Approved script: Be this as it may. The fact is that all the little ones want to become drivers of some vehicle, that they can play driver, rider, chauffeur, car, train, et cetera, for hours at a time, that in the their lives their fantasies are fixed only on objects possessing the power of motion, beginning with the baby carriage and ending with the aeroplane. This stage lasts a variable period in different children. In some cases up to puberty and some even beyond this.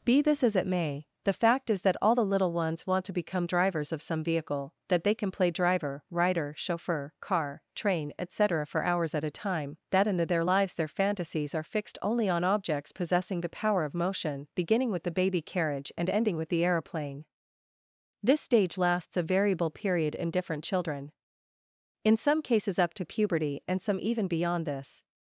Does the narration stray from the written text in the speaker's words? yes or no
no